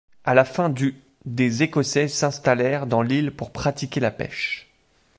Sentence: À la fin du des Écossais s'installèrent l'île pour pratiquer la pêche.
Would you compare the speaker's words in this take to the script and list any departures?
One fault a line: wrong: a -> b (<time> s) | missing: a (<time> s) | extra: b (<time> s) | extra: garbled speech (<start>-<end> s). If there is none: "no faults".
extra: dans (2.9 s)